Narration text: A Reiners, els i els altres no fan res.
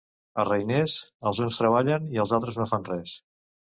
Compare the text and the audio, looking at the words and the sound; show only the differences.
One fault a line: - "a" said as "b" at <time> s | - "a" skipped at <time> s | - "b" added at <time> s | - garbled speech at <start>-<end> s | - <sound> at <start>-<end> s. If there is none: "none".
- "uns treballen" added at 1.5 s